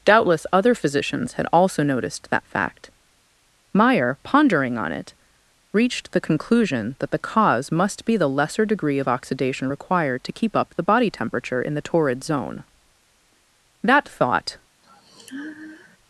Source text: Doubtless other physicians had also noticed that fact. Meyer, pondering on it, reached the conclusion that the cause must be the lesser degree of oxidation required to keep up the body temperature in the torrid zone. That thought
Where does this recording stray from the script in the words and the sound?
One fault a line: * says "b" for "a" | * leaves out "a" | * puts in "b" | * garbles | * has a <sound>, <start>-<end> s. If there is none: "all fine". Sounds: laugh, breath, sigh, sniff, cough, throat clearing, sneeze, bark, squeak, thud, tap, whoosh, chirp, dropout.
* has a sigh, 14.8-16.0 s